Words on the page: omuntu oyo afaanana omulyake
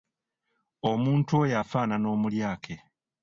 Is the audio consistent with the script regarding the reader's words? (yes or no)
yes